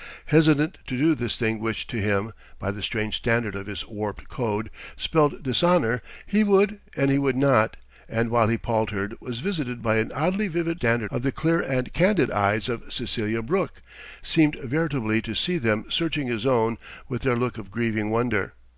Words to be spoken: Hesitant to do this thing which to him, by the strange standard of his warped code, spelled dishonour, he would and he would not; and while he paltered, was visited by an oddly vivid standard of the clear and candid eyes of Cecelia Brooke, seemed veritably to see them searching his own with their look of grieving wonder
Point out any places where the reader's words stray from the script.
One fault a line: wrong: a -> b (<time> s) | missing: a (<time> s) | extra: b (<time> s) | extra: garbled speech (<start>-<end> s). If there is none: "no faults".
no faults